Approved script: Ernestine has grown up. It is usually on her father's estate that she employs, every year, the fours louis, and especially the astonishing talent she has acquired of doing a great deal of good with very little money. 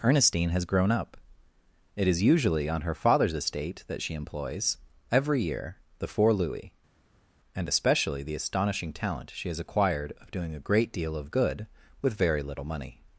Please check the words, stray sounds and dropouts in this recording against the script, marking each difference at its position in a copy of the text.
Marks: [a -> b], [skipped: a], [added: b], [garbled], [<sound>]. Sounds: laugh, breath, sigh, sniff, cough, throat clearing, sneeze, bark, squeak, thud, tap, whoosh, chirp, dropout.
Ernestine has grown up. It is usually on her father's estate that she employs, every year, the [fours -> four] louis, and especially the astonishing talent she has acquired of doing a great deal of good with very little money.